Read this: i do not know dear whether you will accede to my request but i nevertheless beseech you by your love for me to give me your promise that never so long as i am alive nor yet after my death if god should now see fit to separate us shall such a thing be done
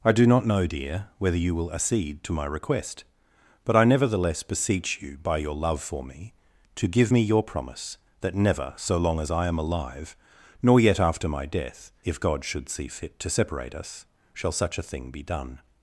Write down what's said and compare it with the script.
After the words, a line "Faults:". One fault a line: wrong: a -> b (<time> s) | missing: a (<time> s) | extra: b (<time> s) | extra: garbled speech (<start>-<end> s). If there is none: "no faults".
i do not know dear whether you will accede to my request but i nevertheless beseech you by your love for me to give me your promise that never so long as i am alive nor yet after my death if god should see fit to separate us shall such a thing be done
Faults:
missing: now (12.7 s)